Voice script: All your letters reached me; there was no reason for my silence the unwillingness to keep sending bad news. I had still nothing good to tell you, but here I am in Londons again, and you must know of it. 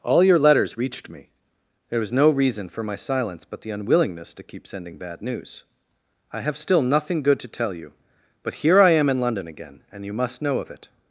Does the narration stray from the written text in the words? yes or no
yes